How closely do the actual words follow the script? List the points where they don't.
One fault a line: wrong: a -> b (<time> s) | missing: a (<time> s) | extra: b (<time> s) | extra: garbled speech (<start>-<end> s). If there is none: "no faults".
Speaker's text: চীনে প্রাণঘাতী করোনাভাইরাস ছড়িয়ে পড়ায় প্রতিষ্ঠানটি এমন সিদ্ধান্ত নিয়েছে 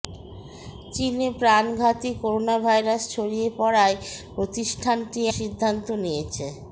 missing: এমন (5.2 s)